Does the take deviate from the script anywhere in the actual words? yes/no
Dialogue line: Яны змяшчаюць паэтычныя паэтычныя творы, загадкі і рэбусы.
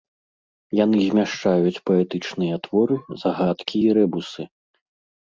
yes